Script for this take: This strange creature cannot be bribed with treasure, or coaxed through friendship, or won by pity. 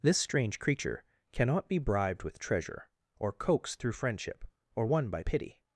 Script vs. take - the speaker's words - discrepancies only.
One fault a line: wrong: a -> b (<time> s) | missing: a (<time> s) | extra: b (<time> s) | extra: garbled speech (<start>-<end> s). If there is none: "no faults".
no faults